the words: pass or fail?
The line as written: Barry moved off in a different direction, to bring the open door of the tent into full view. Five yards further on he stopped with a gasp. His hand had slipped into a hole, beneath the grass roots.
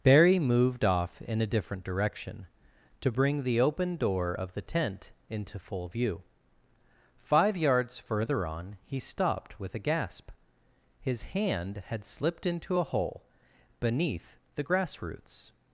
pass